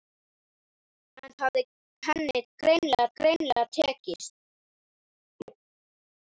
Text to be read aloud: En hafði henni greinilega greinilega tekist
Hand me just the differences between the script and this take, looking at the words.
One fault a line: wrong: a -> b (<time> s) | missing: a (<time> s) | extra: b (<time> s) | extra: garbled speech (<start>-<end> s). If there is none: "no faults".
no faults